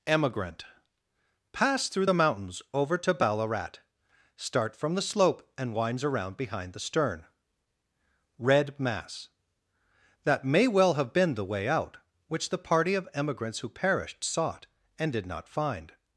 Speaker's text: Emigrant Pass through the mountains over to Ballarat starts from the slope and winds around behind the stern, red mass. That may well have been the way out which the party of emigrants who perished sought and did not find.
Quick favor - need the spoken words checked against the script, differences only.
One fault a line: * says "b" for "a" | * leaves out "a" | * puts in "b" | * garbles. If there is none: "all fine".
* says "start" for "starts"